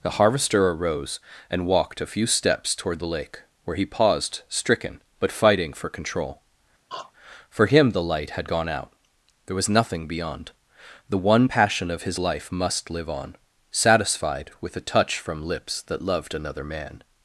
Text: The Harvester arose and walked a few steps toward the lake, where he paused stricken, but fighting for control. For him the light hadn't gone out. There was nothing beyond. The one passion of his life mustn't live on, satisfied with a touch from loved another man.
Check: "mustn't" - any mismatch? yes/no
yes